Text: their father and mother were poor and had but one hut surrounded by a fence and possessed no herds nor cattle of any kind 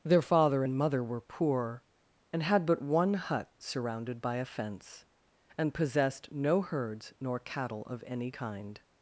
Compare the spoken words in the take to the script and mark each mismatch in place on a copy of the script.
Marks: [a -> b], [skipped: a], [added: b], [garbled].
their father and mother were poor and had but one hut surrounded by a fence and possessed no herds nor cattle of any kind